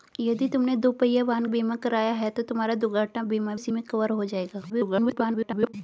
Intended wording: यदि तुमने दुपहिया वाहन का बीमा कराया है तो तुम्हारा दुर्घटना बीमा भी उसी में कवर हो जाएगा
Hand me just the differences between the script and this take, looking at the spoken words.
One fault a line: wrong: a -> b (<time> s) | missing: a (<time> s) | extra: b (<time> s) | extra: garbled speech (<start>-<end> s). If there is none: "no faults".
missing: का (1.4 s)
missing: भी (3.5 s)
extra: garbled speech (4.7-5.7 s)